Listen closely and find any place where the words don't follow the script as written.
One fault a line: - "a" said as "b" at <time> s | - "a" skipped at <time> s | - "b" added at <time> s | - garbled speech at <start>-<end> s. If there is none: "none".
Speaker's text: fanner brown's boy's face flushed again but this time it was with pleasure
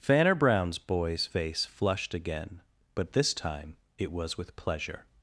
none